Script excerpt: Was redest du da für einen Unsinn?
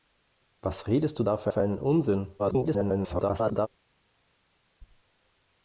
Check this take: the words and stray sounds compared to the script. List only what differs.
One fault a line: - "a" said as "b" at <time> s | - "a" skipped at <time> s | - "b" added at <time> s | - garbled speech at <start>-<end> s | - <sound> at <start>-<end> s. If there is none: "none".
- "für" added at 1.5 s
- garbled speech at 2.4-3.7 s